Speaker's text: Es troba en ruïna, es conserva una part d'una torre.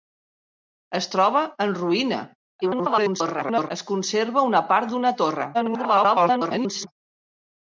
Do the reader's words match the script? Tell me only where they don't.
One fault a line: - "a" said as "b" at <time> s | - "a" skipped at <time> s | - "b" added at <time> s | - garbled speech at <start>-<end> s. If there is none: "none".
- garbled speech at 2.6-3.7 s
- garbled speech at 5.5-6.9 s